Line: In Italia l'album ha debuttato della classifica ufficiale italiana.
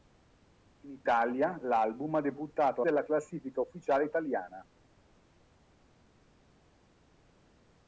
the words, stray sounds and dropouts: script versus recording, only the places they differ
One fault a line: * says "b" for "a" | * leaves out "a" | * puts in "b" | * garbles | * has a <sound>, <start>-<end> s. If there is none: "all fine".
all fine